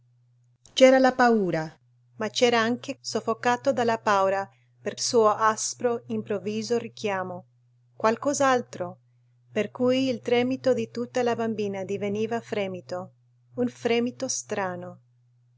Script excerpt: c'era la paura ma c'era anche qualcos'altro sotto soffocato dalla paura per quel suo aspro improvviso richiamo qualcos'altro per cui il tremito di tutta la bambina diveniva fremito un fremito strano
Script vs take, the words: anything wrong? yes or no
yes